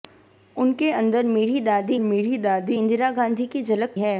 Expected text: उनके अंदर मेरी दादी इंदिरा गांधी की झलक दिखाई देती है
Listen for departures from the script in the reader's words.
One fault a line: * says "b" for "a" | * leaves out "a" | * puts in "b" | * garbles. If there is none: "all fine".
* puts in "मेरी दादी"
* leaves out "दिखाई देती"